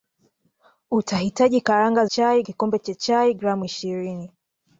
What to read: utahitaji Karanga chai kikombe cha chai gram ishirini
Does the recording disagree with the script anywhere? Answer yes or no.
no